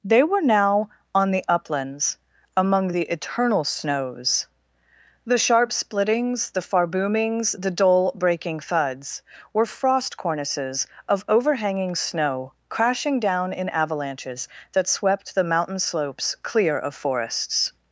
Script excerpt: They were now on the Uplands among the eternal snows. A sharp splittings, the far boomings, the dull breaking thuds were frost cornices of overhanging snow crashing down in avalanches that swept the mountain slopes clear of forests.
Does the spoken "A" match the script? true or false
false